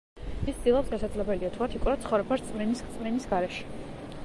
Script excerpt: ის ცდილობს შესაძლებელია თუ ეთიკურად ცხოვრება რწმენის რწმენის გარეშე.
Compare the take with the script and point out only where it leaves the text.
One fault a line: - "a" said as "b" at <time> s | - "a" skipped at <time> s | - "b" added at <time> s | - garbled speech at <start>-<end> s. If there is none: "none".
none